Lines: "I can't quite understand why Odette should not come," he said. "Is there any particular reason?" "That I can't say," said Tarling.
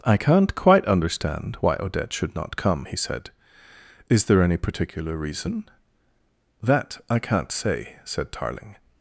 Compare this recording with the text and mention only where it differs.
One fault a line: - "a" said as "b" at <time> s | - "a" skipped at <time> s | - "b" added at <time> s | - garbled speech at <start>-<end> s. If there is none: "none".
none